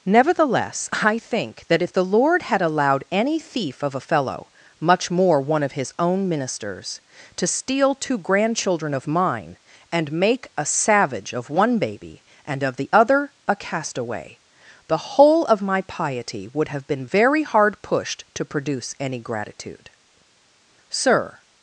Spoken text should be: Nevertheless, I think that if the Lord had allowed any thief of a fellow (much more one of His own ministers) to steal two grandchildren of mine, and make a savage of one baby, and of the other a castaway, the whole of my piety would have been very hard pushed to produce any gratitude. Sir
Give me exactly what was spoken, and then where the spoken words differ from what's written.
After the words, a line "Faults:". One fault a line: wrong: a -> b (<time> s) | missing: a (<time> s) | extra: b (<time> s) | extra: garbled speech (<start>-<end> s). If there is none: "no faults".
Nevertheless, I think that if the Lord had allowed any thief of a fellow (much more one of His own ministers) to steal two grandchildren of mine, and make a savage of one baby, and of the other a castaway, the whole of my piety would have been very hard pushed to produce any gratitude. Sir
Faults:
no faults